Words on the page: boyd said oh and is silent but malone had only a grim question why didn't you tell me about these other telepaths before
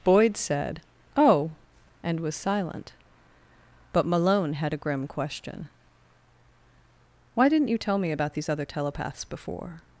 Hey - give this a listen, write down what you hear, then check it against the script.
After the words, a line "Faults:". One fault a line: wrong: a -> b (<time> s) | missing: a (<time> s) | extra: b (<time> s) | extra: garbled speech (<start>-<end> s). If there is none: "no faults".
boyd said oh and was silent but malone had a grim question why didn't you tell me about these other telepaths before
Faults:
wrong: is -> was (2.2 s)
missing: only (4.7 s)